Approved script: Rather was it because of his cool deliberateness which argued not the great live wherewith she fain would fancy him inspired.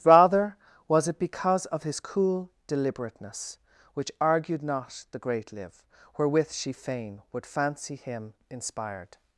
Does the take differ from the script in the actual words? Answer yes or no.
no